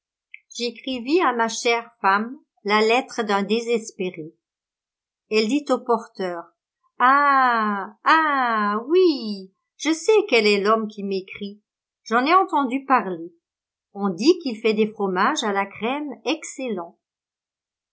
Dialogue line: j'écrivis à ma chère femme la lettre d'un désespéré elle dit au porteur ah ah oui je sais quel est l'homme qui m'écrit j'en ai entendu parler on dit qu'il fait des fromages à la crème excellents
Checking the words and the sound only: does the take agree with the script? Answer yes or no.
yes